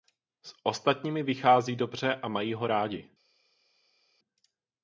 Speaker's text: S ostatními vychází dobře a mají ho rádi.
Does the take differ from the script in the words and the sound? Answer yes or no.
no